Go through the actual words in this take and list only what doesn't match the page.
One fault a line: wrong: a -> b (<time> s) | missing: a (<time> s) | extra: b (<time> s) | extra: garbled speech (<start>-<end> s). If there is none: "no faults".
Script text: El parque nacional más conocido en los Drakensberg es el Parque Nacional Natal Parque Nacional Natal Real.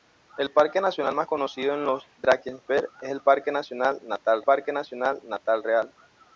no faults